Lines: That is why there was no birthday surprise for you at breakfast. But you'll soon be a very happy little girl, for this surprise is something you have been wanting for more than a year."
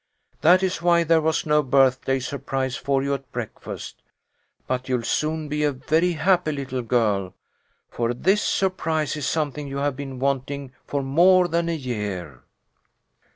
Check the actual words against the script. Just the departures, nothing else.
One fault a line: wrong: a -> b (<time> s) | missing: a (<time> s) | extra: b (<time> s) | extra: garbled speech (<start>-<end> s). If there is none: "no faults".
no faults